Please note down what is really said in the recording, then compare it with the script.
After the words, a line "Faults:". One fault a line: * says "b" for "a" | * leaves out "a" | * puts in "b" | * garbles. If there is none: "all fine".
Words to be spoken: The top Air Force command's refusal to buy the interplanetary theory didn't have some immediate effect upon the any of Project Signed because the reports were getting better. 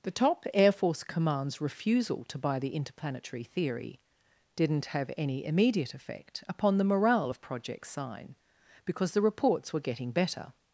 The top Air Force command's refusal to buy the interplanetary theory didn't have any immediate effect upon the morale of Project Sign because the reports were getting better.
Faults:
* says "any" for "some"
* says "morale" for "any"
* says "Sign" for "Signed"